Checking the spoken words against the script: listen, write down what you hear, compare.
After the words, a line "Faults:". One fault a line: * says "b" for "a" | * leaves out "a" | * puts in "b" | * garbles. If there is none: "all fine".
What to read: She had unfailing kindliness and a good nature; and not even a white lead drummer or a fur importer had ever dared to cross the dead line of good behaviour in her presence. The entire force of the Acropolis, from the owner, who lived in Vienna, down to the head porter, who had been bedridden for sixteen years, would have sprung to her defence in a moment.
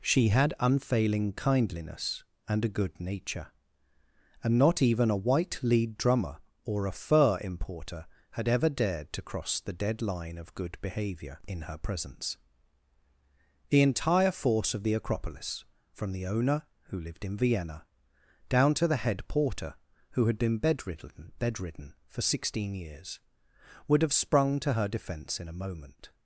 She had unfailing kindliness and a good nature; and not even a white lead drummer or a fur importer had ever dared to cross the dead line of good behaviour in her presence. The entire force of the Acropolis, from the owner, who lived in Vienna, down to the head porter, who had been bedridden bedridden for sixteen years, would have sprung to her defence in a moment.
Faults:
* puts in "bedridden"